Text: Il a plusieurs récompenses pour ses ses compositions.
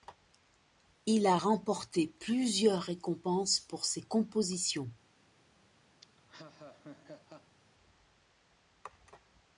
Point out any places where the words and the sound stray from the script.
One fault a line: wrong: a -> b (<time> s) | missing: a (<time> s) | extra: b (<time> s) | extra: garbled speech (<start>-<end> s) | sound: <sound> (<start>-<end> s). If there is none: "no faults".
extra: remporté (1.3 s)
missing: ses (4.0 s)
sound: laugh (6.0-7.6 s)